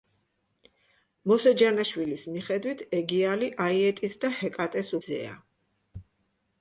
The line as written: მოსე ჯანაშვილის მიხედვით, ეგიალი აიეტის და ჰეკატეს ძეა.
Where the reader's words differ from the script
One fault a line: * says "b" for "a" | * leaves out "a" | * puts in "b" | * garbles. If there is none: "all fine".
all fine